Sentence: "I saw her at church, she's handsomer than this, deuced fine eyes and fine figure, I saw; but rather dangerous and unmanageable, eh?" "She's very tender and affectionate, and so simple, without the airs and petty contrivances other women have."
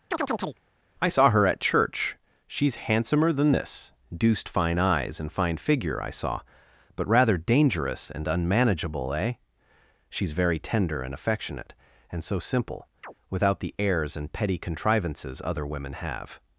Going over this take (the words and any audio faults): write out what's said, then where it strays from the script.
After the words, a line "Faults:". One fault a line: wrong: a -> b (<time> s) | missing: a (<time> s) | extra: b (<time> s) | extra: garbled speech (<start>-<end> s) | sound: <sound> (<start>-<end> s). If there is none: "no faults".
"I saw her at church, she's handsomer than this, deuced fine eyes and fine figure, I saw; but rather dangerous and unmanageable, eh?" "She's very tender and affectionate, and so simple, without the airs and petty contrivances other women have."
Faults:
sound: chirp (0.1-0.6 s)
sound: chirp (13.0-13.1 s)